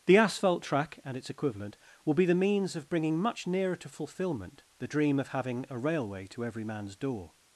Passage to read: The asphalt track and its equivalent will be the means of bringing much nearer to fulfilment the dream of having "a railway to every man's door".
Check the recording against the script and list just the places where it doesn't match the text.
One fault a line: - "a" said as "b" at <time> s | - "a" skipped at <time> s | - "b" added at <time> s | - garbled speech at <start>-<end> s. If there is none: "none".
none